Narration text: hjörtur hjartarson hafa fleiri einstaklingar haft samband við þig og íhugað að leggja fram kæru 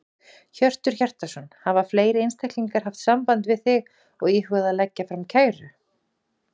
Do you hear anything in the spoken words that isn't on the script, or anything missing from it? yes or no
no